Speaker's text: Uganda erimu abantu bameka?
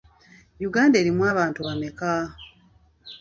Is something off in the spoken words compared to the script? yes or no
no